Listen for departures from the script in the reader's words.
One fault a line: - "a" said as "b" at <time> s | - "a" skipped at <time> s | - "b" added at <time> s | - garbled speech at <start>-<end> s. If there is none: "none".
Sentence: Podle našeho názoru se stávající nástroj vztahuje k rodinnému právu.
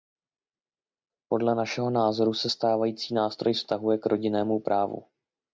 none